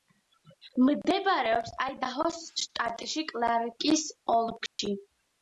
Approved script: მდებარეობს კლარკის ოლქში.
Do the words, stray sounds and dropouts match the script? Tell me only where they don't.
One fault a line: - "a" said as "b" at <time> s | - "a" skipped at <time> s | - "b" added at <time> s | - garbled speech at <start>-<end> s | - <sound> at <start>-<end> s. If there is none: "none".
- "აიდაჰოს შტატში" added at 1.9 s
- dropout at 4.7-4.8 s